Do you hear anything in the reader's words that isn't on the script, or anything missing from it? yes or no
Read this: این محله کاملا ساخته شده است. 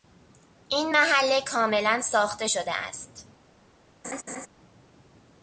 no